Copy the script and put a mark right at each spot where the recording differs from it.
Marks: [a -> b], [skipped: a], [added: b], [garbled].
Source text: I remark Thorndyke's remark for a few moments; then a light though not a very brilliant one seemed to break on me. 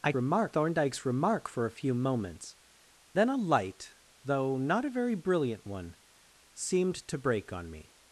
I remark Thorndyke's remark for a few moments; then a light though not a very brilliant one seemed to break on me.